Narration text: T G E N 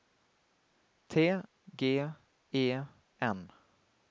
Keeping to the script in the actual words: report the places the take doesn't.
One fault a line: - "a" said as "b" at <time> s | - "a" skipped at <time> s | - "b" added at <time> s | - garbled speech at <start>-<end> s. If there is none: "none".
none